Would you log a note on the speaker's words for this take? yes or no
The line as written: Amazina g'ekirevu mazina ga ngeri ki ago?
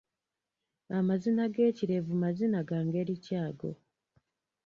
no